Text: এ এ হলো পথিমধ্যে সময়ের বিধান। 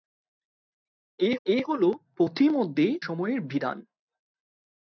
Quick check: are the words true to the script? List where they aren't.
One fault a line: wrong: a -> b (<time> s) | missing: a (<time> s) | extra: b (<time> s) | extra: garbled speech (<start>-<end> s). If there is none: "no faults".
no faults